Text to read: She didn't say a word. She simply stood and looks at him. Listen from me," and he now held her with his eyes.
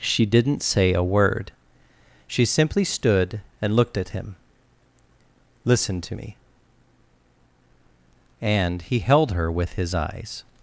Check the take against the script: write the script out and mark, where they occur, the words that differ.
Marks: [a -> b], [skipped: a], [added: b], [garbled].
She didn't say a word. She simply stood and [looks -> looked] at him. Listen [from -> to] me," and he [skipped: now] held her with his eyes.